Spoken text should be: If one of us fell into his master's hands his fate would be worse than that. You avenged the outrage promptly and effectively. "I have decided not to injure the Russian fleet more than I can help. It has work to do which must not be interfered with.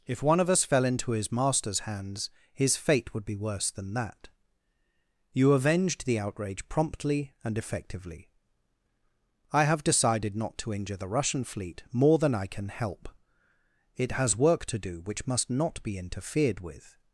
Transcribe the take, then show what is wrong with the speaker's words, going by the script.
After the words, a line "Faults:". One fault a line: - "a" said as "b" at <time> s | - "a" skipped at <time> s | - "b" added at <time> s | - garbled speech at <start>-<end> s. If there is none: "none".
If one of us fell into his master's hands his fate would be worse than that. You avenged the outrage promptly and effectively. "I have decided not to injure the Russian fleet more than I can help. It has work to do which must not be interfered with.
Faults:
none